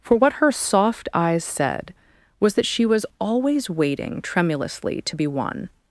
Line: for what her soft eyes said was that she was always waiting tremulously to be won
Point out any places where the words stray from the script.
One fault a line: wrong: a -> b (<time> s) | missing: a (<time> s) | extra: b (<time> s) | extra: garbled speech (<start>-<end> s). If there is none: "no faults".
no faults